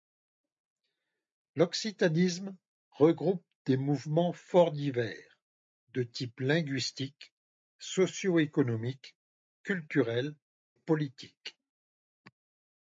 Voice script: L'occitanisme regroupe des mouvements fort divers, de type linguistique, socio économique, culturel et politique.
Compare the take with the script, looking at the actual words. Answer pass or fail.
fail